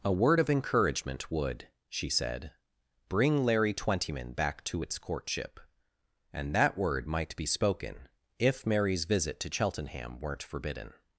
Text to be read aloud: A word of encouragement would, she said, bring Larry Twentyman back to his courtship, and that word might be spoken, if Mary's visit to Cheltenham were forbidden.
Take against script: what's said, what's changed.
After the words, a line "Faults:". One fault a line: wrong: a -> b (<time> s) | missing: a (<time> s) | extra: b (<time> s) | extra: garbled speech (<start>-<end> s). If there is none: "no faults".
A word of encouragement would, she said, bring Larry Twentyman back to its courtship, and that word might be spoken, if Mary's visit to Cheltenham weren't forbidden.
Faults:
wrong: his -> its (4.8 s)
wrong: were -> weren't (10.2 s)